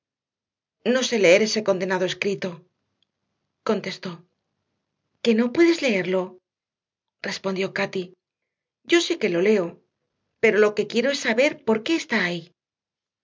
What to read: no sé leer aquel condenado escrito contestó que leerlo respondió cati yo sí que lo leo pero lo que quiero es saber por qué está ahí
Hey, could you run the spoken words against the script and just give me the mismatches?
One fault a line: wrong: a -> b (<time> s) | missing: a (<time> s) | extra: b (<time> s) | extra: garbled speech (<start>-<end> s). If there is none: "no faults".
wrong: aquel -> ese (1.5 s)
extra: no puedes (5.4 s)